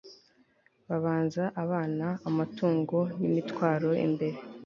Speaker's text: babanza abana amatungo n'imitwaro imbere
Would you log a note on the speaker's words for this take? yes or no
no